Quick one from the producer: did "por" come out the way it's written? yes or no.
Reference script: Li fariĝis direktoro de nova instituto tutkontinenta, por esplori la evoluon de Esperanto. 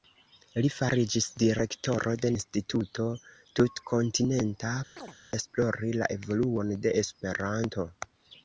no